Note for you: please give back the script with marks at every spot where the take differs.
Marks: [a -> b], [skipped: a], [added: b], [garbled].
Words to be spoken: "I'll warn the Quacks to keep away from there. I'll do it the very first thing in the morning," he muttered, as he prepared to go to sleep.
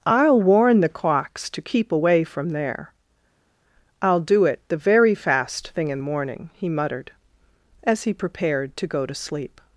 "I'll warn the Quacks to keep away from there. I'll do it the very [first -> fast] thing in the morning," he muttered, as he prepared to go to sleep.